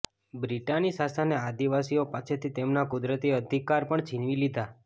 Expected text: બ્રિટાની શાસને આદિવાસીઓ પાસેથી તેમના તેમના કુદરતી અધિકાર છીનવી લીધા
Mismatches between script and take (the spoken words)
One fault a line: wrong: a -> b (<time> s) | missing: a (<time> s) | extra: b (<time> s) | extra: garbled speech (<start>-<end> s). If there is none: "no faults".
missing: તેમના (2.9 s)
extra: પણ (3.9 s)